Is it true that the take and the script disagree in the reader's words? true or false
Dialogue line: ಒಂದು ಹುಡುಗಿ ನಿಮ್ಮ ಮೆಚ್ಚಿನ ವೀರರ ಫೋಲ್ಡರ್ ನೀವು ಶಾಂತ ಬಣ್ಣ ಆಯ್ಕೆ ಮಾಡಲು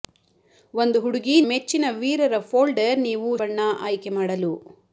true